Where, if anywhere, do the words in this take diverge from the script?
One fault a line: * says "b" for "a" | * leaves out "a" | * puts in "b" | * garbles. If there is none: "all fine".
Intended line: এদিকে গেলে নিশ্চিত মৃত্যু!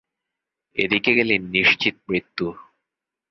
all fine